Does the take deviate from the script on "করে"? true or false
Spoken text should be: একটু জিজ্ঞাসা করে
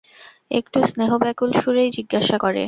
false